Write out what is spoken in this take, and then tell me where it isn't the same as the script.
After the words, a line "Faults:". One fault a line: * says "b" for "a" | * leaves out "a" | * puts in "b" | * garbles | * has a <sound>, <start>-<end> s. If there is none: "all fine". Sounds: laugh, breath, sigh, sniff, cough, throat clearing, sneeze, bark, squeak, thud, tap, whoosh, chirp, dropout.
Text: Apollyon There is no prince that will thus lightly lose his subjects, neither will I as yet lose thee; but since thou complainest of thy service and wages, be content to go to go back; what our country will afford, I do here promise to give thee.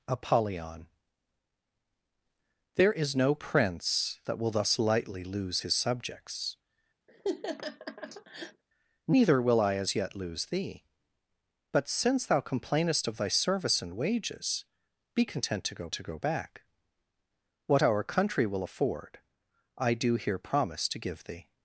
Apollyon There is no prince that will thus lightly lose his subjects, neither will I as yet lose thee; but since thou complainest of thy service and wages, be content to go to go back; what our country will afford, I do here promise to give thee.
Faults:
* has a laugh, 7.1-8.6 s